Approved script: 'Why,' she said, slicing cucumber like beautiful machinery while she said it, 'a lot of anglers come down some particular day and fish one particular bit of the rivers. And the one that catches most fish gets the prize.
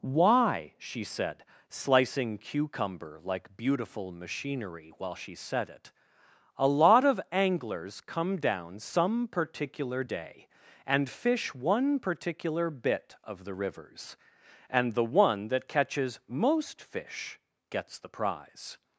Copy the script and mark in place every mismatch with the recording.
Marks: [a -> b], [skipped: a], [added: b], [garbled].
'Why,' she said, slicing cucumber like beautiful machinery while she said it, 'a lot of anglers come down some particular day and fish one particular bit of the rivers. And the one that catches most fish gets the prize.